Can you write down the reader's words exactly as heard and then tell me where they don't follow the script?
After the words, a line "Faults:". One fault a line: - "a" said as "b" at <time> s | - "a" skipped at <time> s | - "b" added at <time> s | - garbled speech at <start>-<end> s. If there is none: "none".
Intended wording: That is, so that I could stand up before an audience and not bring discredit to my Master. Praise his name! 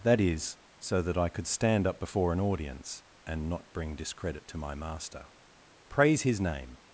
That is, so that I could stand up before an audience and not bring discredit to my Master. Praise his name!
Faults:
none